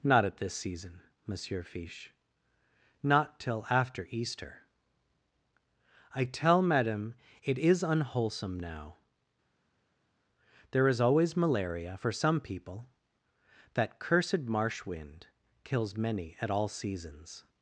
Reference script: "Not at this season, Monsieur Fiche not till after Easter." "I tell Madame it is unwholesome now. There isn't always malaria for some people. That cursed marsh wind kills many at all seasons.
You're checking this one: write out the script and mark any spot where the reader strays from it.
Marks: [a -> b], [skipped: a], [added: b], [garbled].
"Not at this season, Monsieur Fiche not till after Easter." "I tell Madame it is unwholesome now. There [isn't -> is] always malaria for some people. That cursed marsh wind kills many at all seasons.